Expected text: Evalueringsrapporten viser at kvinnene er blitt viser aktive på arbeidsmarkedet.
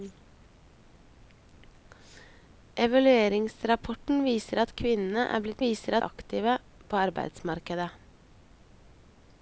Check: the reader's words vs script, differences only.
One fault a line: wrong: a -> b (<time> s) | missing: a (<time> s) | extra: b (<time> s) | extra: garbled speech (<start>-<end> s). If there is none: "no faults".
no faults